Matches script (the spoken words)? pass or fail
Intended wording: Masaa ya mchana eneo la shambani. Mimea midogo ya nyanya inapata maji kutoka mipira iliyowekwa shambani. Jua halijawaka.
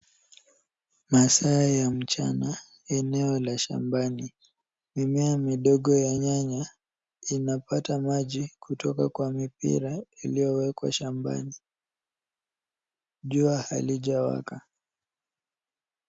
fail